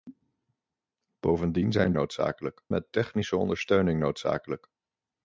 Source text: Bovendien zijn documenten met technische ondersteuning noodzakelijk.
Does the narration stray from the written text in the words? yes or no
yes